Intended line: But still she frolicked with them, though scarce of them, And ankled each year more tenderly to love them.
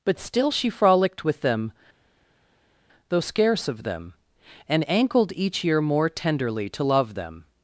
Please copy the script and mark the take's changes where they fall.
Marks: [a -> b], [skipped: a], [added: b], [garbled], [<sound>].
But still she frolicked with them, though scarce of them, And ankled each year more tenderly to love them.